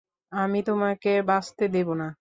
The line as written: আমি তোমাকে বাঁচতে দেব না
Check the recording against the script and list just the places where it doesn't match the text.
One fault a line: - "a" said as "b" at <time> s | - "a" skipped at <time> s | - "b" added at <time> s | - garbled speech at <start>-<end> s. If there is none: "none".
none